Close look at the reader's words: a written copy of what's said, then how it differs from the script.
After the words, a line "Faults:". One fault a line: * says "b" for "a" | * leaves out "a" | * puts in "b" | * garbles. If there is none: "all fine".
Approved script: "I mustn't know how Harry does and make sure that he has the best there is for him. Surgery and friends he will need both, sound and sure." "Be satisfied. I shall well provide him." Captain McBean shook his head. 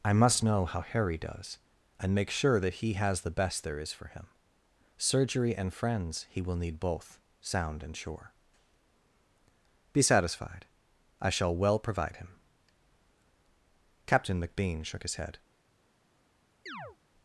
"I must know how Harry does and make sure that he has the best there is for him. Surgery and friends he will need both, sound and sure." "Be satisfied. I shall well provide him." Captain McBean shook his head.
Faults:
* says "must" for "mustn't"